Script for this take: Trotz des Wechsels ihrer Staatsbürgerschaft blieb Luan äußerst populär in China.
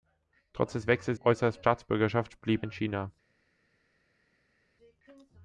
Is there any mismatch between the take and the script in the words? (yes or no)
yes